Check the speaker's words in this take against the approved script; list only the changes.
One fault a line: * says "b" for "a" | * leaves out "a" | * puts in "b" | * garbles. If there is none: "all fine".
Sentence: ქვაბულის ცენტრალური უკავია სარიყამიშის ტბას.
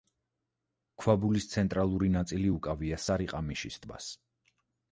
* puts in "ნაწილი"